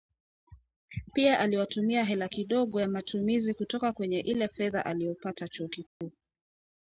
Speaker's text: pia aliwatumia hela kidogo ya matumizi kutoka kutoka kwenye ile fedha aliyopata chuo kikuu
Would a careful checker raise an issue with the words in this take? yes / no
yes